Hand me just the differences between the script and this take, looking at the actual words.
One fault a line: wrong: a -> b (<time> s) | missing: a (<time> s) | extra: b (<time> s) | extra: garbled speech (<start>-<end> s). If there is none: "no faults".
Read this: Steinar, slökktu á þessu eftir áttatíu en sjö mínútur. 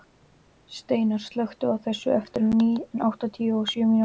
wrong: en -> og (3.6 s)